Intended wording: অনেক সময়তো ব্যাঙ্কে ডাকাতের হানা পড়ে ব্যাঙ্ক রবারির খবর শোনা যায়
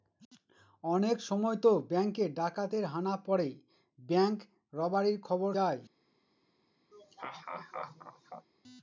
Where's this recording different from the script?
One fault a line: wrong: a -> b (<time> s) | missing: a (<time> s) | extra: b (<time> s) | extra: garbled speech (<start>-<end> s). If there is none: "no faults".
missing: শোনা (5.5 s)